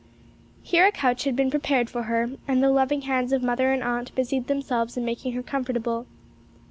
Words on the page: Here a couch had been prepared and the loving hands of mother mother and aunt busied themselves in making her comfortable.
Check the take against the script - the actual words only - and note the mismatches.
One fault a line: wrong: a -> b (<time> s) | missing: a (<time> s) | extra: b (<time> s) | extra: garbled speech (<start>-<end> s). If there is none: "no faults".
extra: for her (1.9 s)
missing: mother (3.7 s)